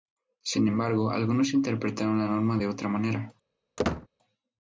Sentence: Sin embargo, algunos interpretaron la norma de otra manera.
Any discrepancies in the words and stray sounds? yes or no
yes